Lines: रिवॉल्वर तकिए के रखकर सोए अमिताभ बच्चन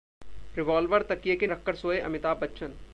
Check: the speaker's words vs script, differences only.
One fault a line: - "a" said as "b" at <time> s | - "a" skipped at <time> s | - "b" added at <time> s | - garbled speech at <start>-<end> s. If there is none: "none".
none